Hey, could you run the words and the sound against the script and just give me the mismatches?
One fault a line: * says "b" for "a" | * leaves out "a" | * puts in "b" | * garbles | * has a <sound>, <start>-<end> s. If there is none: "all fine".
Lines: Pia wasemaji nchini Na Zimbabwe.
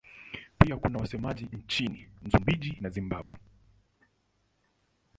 * puts in "kuna"
* puts in "Msumbiji"
* has a dropout, 3.2-3.3 s